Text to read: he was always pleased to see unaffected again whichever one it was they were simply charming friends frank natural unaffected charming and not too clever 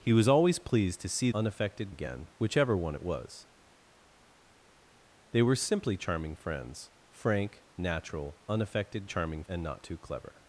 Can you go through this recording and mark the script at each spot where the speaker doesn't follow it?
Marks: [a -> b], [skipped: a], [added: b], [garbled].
he was always pleased to see unaffected again whichever one it was they were simply charming friends frank natural unaffected charming and not too clever